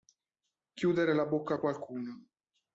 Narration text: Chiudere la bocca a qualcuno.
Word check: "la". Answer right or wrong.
right